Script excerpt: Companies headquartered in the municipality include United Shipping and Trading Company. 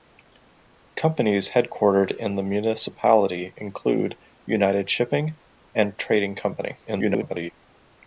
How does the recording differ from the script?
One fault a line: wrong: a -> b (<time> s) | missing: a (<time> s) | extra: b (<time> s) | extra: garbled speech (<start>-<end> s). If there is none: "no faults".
extra: garbled speech (6.9-7.5 s)